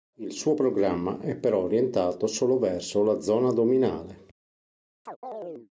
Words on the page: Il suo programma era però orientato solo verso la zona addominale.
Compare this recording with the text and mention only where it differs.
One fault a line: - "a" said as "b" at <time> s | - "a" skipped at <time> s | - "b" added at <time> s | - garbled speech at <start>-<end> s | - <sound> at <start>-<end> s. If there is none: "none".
- "era" said as "è" at 1.2 s
- chirp at 5.1-5.7 s